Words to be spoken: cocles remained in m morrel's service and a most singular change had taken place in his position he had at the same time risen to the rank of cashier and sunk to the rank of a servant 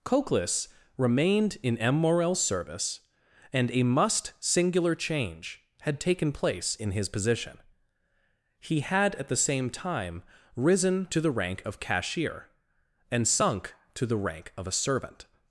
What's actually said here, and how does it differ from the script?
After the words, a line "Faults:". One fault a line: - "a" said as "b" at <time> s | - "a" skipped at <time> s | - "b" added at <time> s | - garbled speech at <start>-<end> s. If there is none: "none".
cocles remained in m morrel's service and a must singular change had taken place in his position he had at the same time risen to the rank of cashier and sunk to the rank of a servant
Faults:
- "most" said as "must" at 3.8 s